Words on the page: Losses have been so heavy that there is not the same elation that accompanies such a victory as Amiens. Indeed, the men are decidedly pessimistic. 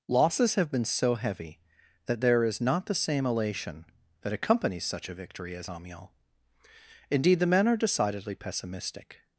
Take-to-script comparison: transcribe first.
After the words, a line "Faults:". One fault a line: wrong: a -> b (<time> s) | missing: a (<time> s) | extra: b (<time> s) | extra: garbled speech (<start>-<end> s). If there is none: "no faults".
Losses have been so heavy that there is not the same elation that accompanies such a victory as Amiens. Indeed, the men are decidedly pessimistic.
Faults:
no faults